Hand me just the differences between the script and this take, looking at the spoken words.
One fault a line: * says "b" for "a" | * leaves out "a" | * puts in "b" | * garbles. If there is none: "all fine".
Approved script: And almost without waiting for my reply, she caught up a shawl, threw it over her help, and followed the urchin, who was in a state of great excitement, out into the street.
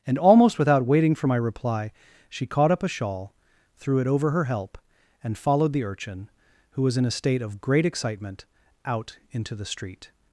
all fine